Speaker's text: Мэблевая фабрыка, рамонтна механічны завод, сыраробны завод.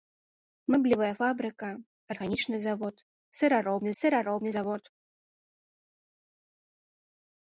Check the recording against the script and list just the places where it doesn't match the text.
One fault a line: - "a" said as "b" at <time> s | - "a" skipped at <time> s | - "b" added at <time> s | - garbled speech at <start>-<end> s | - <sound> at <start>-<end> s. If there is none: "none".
- "рамонтна" skipped at 1.7 s
- "сыраробны" added at 4.0 s